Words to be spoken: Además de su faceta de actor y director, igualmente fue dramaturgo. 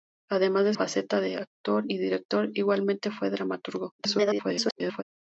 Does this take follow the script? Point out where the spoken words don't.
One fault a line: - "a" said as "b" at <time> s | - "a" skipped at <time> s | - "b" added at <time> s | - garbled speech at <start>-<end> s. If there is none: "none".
- "su" skipped at 0.7 s
- garbled speech at 4.0-5.0 s